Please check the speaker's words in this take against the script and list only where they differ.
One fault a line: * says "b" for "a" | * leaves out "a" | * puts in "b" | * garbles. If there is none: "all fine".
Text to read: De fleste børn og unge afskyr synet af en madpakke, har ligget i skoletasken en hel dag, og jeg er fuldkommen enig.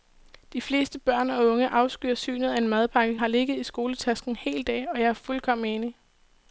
all fine